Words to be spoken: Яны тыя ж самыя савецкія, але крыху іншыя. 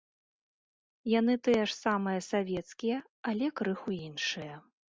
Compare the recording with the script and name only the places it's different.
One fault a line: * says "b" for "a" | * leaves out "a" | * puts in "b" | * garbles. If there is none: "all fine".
all fine